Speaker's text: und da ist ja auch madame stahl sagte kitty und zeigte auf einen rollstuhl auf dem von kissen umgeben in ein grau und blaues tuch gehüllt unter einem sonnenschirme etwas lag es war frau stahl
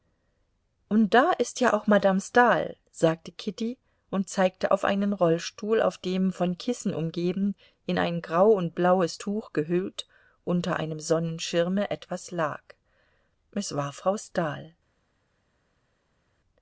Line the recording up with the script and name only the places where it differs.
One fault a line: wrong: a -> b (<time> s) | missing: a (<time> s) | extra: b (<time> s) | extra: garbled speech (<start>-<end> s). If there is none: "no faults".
no faults